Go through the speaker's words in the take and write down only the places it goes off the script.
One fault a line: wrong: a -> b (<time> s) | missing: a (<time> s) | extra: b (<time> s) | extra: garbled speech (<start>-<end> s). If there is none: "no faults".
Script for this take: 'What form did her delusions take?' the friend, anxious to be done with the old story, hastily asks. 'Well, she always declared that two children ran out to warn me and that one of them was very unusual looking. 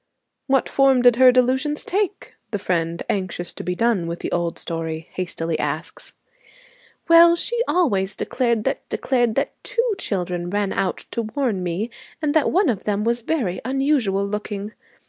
extra: declared that (8.9 s)